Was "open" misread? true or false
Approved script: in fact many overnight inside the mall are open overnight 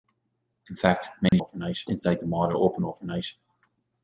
false